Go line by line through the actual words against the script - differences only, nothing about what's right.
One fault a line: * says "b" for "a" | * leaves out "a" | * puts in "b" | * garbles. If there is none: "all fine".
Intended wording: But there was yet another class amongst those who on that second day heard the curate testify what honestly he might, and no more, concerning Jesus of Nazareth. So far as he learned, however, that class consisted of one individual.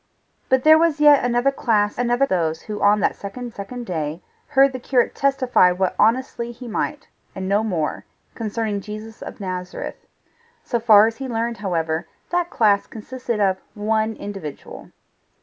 * says "another" for "amongst"
* puts in "second"